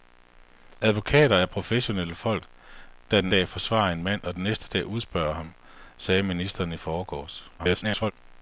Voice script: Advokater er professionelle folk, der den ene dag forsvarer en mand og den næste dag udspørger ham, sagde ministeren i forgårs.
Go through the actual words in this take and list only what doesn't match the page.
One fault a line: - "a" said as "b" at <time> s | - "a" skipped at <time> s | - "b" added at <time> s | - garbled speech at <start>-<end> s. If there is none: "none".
- "ene" skipped at 3.3 s
- garbled speech at 7.6-8.1 s